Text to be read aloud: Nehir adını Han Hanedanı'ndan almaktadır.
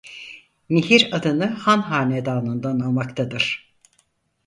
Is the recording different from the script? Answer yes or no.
no